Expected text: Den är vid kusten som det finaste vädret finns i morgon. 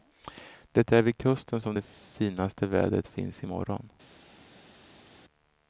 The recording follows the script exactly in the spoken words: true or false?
false